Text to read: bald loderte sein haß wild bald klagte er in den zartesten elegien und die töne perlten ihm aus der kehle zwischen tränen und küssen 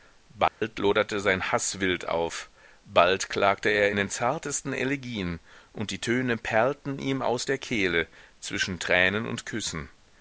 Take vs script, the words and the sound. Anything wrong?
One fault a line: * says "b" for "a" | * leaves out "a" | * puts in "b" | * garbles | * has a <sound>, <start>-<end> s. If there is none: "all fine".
* has a dropout, 0.5-0.6 s
* puts in "auf"